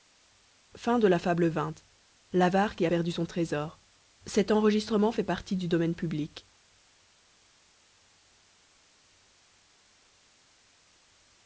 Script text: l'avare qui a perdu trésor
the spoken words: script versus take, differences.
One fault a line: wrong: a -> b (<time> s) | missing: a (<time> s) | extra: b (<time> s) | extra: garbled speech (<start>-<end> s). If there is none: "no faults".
extra: son (3.1 s)